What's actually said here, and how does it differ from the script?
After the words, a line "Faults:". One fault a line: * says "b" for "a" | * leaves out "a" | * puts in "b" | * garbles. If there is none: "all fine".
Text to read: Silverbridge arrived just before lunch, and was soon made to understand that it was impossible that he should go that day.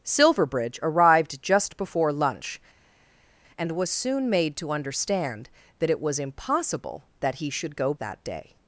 Silverbridge arrived just before lunch, and was soon made to understand that it was impossible that he should go that day.
Faults:
all fine